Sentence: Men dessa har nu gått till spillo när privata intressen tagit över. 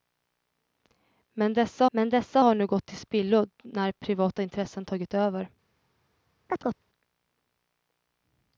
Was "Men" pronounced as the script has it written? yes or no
yes